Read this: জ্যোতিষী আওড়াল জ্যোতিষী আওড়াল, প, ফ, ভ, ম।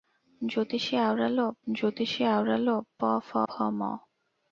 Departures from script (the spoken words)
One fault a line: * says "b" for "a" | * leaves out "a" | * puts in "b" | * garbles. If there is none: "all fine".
all fine